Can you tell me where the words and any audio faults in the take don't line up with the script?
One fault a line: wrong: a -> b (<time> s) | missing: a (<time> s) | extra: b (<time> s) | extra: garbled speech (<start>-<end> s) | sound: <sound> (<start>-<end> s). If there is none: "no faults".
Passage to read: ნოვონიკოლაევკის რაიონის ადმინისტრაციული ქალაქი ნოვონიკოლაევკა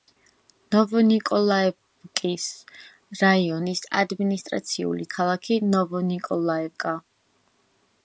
no faults